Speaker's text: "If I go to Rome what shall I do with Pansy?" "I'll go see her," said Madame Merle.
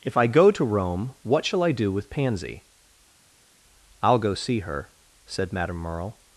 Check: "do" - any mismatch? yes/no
no